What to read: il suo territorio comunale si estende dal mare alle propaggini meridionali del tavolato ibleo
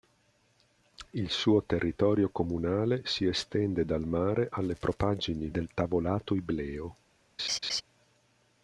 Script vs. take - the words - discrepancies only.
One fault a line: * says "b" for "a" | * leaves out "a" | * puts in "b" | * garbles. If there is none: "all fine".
* leaves out "meridionali"